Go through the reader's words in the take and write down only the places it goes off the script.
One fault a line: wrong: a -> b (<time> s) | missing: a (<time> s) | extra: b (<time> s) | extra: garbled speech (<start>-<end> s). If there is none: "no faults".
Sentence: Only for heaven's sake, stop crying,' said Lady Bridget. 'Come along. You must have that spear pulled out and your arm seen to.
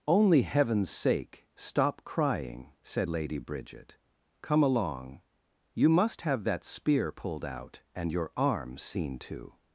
missing: for (0.4 s)